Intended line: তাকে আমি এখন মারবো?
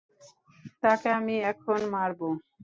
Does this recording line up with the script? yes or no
yes